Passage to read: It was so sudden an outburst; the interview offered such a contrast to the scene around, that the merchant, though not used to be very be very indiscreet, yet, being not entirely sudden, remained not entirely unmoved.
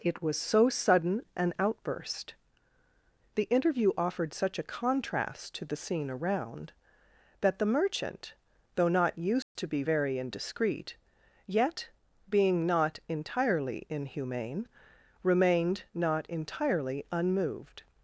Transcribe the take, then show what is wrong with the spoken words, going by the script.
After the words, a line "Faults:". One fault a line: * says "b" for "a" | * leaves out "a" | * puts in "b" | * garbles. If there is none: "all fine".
It was so sudden an outburst; the interview offered such a contrast to the scene around, that the merchant, though not used to be very indiscreet, yet, being not entirely inhumane, remained not entirely unmoved.
Faults:
* leaves out "be very"
* says "inhumane" for "sudden"